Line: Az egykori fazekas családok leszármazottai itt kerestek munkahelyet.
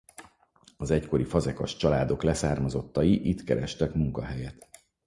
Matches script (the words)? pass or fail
pass